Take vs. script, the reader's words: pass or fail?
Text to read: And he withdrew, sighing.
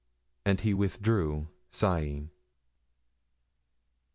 pass